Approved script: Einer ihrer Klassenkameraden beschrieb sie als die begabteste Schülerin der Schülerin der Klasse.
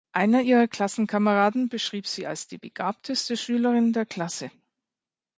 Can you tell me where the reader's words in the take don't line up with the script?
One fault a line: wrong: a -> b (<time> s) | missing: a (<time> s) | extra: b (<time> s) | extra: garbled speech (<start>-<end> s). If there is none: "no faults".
missing: Schülerin der (4.1 s)